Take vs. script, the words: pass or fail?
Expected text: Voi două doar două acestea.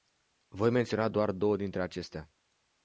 fail